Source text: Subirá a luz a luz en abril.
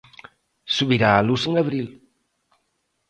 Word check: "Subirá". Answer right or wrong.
right